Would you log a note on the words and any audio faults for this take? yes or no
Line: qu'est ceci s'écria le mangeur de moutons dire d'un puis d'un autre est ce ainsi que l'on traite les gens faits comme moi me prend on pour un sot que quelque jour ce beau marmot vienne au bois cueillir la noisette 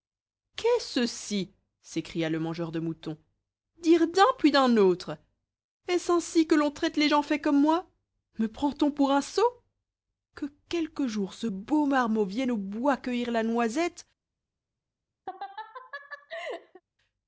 yes